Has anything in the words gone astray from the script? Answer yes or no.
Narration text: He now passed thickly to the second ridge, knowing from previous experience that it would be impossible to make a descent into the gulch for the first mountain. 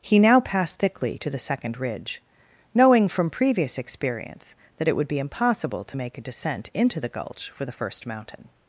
no